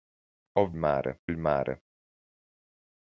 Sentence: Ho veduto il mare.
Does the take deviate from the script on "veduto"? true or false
true